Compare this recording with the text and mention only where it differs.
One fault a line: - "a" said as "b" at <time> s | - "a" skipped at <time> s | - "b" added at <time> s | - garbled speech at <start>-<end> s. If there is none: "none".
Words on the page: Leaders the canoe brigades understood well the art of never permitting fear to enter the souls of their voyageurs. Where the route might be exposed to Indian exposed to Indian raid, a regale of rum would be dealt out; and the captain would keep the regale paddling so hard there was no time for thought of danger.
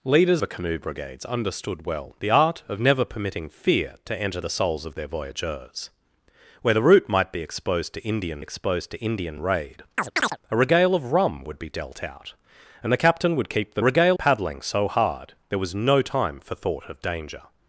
none